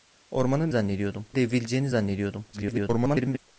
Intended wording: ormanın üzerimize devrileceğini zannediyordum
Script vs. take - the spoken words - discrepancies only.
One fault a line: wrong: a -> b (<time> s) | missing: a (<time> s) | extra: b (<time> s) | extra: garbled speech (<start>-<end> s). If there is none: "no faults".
wrong: üzerimize -> zannediyordum (0.7 s)
extra: garbled speech (2.5-3.4 s)